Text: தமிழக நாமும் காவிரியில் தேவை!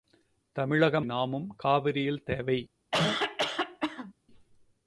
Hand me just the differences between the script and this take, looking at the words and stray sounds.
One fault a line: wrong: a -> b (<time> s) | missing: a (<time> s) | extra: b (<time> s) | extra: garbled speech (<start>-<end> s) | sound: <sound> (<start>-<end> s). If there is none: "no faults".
sound: cough (2.9-4.1 s)